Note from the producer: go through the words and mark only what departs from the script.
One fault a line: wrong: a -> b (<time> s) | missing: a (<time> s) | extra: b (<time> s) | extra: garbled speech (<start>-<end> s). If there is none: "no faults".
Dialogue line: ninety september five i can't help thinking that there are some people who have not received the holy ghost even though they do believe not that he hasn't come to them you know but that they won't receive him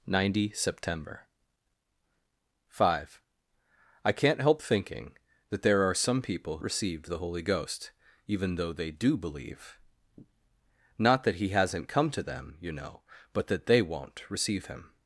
missing: who have not (6.6 s)